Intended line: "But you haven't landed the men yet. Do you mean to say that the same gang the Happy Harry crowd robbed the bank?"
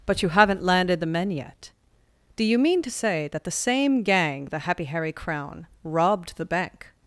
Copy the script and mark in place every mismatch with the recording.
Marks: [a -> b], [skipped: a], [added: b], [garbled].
"But you haven't landed the men yet. Do you mean to say that the same gang the Happy Harry [crowd -> crown] robbed the bank?"